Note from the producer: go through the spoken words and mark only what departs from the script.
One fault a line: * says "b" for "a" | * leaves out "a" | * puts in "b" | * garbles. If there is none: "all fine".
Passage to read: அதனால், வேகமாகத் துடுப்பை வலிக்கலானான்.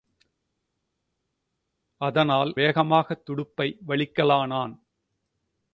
all fine